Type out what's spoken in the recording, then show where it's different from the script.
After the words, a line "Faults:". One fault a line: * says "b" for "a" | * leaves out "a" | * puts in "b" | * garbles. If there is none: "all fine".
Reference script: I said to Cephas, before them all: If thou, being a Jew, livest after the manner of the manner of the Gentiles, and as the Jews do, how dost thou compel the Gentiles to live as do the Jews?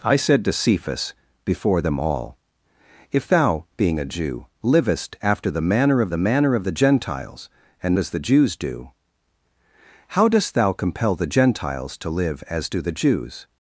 I said to Cephas, before them all: If thou, being a Jew, livest after the manner of the manner of the Gentiles, and as the Jews do, how dost thou compel the Gentiles to live as do the Jews?
Faults:
all fine